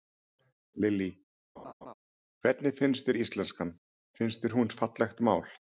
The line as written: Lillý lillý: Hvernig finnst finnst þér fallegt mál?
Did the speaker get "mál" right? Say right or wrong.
right